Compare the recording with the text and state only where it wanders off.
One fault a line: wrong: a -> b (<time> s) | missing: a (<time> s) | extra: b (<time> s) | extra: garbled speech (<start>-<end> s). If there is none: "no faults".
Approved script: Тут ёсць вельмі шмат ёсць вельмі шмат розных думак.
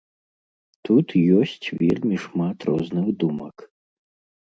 missing: ёсць вельмі шмат (2.6 s)